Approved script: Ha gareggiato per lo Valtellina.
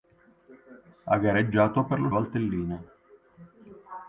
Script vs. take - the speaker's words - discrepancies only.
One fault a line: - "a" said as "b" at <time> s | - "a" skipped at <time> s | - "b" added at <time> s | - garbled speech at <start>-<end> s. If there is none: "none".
none